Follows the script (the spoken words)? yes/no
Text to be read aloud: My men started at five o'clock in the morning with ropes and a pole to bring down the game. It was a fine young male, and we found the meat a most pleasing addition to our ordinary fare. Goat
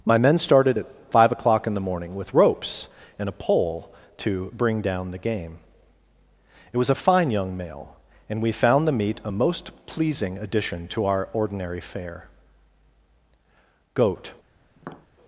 yes